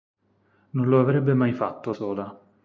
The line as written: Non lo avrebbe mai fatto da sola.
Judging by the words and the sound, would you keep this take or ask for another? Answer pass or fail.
fail